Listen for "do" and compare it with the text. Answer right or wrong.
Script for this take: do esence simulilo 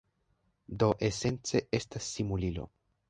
right